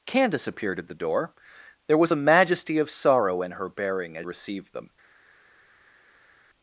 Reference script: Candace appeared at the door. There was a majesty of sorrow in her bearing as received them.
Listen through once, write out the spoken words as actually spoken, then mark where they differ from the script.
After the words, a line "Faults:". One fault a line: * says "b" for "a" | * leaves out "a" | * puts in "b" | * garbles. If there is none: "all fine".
Candace appeared at the door. There was a majesty of sorrow in her bearing as received them.
Faults:
all fine